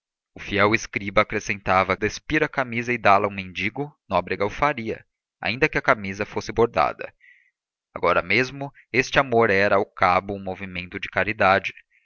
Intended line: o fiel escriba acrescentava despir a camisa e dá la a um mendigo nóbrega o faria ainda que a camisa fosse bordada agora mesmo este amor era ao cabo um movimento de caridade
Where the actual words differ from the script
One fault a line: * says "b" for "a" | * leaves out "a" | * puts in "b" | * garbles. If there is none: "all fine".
all fine